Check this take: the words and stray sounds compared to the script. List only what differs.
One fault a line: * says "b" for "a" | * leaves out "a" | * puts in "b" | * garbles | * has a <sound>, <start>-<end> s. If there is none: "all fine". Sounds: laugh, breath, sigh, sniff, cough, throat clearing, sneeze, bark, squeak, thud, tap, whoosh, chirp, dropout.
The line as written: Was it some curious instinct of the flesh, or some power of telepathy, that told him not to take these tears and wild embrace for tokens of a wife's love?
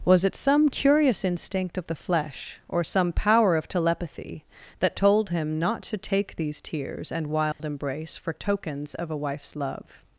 * has a dropout, 7.5-7.6 s